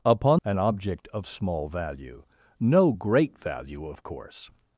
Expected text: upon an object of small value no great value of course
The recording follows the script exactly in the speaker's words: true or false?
true